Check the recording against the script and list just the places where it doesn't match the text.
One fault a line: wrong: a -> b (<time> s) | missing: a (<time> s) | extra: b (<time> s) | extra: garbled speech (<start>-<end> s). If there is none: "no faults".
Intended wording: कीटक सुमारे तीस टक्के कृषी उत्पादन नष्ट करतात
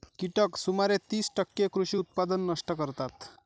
no faults